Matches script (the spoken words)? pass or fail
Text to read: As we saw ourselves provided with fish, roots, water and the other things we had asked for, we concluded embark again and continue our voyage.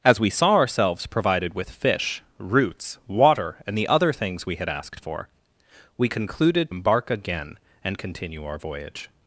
pass